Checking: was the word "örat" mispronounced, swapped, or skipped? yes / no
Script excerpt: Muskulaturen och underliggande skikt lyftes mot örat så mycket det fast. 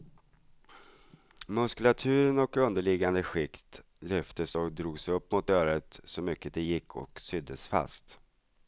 no